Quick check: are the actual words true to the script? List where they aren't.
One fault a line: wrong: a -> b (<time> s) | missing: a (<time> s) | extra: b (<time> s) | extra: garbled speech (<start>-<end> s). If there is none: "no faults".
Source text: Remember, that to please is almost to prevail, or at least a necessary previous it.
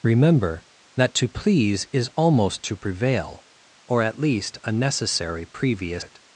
no faults